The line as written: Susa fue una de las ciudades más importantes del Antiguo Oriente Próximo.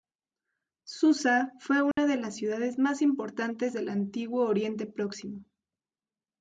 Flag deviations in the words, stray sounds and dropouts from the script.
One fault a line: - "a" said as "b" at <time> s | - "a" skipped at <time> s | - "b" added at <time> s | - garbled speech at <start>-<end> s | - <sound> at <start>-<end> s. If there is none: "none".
- dropout at 1.9-2.0 s